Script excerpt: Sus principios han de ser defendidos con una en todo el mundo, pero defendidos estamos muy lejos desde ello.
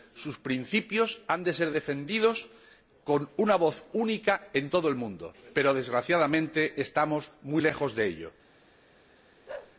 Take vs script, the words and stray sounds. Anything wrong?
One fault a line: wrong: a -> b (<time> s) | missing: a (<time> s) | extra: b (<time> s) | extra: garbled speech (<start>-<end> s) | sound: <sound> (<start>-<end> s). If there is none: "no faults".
extra: voz única (3.5 s)
wrong: defendidos -> desgraciadamente (5.7 s)
wrong: desde -> de (7.9 s)
sound: bark (9.5-9.8 s)